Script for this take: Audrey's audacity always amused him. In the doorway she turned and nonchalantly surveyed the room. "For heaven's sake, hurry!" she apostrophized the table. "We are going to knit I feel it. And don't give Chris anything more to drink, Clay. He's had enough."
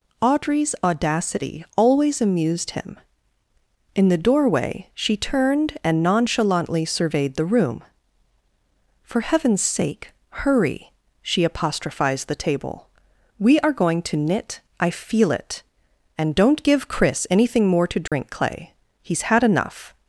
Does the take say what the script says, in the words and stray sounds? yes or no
no